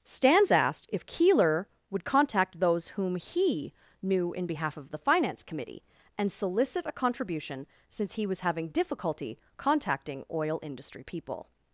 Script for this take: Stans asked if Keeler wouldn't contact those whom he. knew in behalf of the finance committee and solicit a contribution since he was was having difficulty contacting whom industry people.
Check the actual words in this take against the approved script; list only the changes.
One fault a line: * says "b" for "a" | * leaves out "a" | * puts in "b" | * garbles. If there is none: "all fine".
* says "would" for "wouldn't"
* leaves out "was"
* says "oil" for "whom"